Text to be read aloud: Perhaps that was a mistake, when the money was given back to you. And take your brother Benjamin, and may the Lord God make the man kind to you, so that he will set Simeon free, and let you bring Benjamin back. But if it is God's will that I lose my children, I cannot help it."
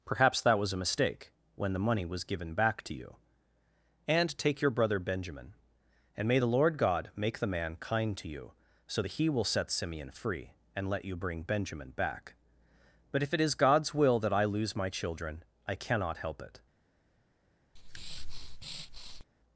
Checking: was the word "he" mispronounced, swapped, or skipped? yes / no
no